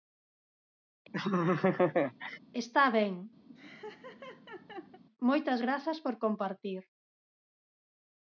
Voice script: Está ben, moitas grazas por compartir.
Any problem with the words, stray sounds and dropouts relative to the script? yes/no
yes